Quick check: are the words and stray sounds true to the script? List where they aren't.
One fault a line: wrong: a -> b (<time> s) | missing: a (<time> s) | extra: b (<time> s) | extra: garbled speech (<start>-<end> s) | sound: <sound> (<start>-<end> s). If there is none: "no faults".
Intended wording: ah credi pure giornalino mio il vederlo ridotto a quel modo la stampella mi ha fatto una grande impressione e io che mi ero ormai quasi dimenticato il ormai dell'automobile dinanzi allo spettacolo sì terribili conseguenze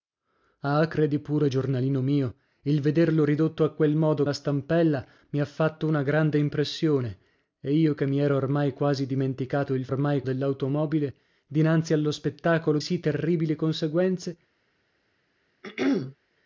sound: throat clearing (15.6-16.2 s)